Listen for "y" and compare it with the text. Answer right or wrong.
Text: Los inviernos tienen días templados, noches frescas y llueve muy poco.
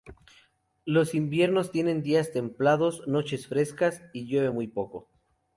right